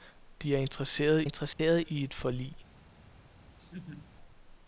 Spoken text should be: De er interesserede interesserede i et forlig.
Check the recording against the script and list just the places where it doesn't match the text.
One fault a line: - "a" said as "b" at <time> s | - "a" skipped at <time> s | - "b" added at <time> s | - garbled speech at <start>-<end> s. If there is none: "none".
none